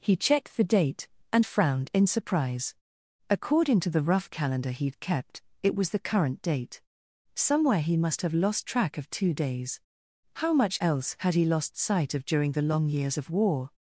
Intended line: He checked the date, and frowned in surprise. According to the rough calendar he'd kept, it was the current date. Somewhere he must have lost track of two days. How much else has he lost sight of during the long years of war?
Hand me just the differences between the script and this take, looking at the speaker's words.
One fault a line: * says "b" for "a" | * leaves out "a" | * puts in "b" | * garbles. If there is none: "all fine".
* says "had" for "has"